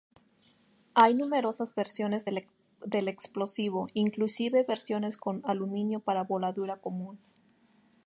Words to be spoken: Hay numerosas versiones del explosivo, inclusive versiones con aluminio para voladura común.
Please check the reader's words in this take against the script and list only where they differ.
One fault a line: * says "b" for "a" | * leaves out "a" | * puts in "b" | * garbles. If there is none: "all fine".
all fine